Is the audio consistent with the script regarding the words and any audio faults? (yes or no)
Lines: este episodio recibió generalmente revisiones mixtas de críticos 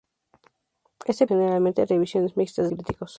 no